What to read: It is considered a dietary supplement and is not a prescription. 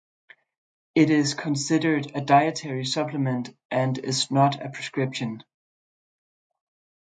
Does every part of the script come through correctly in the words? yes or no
yes